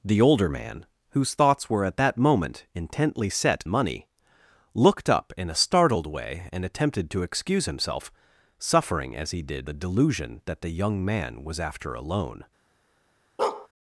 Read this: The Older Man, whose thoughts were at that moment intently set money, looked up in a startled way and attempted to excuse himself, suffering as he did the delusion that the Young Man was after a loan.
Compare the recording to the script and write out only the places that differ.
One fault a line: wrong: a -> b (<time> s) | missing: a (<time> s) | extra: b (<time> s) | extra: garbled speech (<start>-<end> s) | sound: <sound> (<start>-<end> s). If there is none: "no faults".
sound: bark (13.4-13.7 s)